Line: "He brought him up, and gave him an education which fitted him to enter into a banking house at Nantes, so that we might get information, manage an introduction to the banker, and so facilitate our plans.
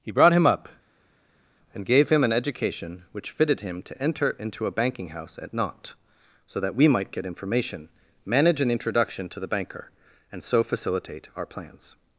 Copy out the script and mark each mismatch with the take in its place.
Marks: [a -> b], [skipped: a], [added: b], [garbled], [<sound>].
"He brought him up, and gave him an education which fitted him to enter into a banking house at Nantes, so that we might get information, manage an introduction to the banker, and so facilitate our plans.